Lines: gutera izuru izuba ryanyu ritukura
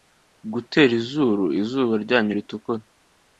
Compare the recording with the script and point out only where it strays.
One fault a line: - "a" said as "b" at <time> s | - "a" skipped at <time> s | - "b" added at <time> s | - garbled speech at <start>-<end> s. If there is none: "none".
none